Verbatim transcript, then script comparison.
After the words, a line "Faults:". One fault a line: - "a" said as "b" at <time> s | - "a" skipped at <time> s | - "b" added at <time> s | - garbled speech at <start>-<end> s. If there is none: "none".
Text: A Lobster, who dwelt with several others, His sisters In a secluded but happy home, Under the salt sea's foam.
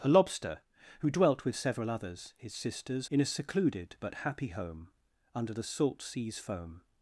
A Lobster, who dwelt with several others, His sisters In a secluded but happy home, Under the salt sea's foam.
Faults:
none